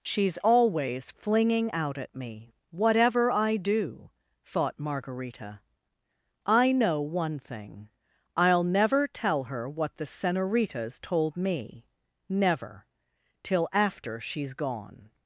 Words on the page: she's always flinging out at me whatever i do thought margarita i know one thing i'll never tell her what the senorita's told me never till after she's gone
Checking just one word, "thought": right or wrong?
right